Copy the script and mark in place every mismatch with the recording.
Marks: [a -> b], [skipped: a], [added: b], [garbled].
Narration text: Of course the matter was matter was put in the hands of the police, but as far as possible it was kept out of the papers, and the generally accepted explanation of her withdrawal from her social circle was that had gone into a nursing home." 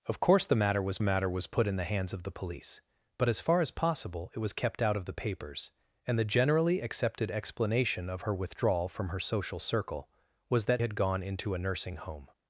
Of course the matter was matter was put in the hands of the police, but as far as possible it was kept out of the papers, and the generally accepted explanation of her withdrawal from her social circle was that had gone into a nursing home."